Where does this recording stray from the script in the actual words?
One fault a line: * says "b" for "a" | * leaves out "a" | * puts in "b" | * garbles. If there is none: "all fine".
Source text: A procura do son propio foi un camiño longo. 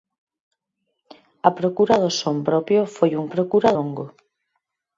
* says "procura" for "camiño"